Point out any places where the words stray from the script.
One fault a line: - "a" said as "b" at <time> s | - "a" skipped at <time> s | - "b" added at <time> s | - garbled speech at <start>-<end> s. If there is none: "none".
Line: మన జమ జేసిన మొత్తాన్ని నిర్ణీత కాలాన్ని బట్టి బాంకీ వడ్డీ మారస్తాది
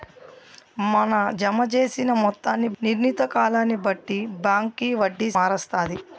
none